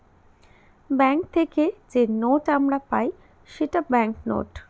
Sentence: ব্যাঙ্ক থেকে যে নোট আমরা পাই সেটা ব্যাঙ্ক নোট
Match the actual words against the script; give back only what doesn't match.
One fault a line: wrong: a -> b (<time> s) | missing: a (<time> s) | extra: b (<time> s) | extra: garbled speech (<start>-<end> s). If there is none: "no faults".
no faults